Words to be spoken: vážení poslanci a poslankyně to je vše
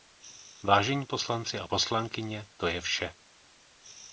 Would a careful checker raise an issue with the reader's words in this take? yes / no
no